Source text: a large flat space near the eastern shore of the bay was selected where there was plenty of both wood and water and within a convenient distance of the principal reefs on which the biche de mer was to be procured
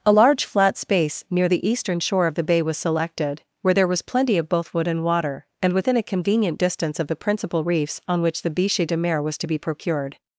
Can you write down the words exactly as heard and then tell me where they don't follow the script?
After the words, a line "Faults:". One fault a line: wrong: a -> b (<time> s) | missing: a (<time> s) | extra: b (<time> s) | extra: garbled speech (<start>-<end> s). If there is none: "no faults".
a large flat space near the eastern shore of the bay was selected where there was plenty of both wood and water and within a convenient distance of the principal reefs on which the biche de mer was to be procured
Faults:
no faults